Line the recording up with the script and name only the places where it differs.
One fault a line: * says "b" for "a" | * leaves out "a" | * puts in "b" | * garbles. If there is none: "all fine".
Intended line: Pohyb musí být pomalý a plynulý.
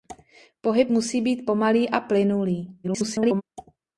* garbles